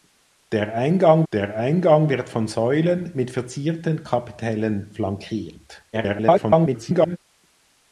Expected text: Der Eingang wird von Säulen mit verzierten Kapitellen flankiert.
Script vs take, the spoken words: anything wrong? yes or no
yes